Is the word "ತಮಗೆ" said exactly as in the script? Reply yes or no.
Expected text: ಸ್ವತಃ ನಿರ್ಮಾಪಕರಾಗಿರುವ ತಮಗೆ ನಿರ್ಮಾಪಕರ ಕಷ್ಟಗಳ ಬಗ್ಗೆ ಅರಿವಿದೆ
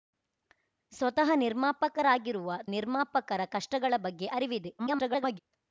no